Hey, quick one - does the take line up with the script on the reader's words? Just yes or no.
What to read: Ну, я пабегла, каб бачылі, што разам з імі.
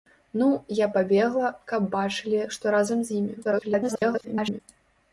no